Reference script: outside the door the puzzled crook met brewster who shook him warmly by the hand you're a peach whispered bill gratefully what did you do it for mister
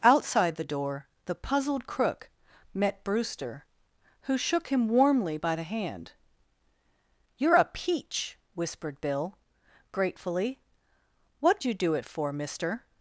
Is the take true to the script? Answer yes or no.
no